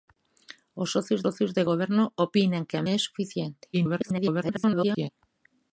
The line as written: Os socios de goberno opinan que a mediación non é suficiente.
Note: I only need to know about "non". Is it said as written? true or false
false